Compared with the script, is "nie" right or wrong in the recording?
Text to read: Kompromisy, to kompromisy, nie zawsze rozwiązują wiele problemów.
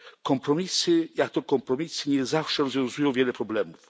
right